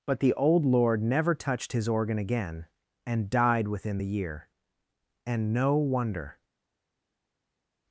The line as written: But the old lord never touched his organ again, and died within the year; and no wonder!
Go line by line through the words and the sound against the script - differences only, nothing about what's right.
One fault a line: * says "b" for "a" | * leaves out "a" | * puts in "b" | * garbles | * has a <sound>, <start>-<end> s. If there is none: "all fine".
all fine